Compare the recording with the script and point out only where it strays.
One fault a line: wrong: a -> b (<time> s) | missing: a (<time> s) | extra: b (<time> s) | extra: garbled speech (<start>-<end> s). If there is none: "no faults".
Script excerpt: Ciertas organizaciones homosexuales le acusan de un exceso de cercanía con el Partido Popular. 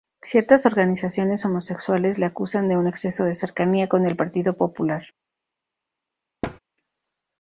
no faults